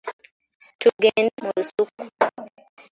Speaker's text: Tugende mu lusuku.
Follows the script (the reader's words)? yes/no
yes